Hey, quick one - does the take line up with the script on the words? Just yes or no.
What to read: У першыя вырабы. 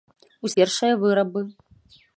yes